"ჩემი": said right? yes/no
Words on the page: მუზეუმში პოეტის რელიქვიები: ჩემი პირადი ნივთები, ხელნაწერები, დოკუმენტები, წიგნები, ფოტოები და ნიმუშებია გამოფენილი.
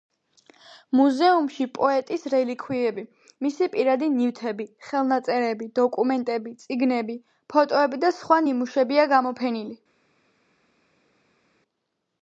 no